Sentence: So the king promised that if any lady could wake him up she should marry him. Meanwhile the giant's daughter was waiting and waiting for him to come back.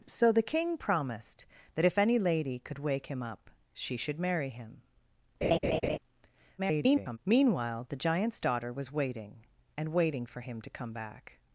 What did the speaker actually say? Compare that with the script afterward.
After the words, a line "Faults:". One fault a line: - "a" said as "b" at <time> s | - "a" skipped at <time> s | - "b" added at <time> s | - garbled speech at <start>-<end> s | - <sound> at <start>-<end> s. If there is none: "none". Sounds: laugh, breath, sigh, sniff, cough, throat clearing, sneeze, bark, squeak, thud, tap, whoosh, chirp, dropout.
So the king promised that if any lady could wake him up she should marry him. [garbled] Meanwhile the giant's daughter was waiting and waiting for him to come back.
Faults:
- laugh at 5.4-6.0 s
- garbled speech at 6.6-7.2 s